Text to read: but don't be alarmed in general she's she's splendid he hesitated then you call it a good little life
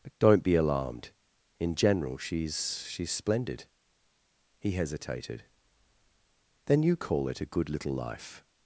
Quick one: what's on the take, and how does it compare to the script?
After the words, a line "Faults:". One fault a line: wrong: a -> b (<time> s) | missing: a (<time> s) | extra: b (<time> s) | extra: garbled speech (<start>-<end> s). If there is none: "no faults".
but don't be alarmed in general she's she's splendid he hesitated then you call it a good little life
Faults:
no faults